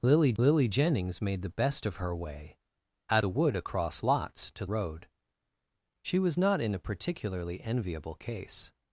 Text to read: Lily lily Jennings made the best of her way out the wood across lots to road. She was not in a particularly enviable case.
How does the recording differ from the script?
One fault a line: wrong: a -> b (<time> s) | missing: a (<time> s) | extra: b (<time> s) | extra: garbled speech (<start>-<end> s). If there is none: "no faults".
no faults